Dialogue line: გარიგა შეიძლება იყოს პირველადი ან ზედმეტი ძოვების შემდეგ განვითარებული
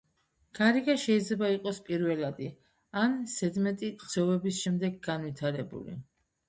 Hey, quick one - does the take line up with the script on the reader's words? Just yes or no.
yes